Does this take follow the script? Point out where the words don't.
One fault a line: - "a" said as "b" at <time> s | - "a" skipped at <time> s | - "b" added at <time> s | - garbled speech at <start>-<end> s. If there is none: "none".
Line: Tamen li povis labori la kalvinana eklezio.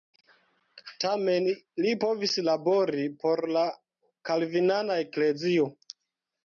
- "por" added at 3.3 s